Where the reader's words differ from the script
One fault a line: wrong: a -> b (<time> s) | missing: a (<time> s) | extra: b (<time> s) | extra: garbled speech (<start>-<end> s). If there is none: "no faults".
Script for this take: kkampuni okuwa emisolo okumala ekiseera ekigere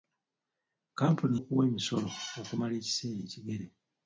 no faults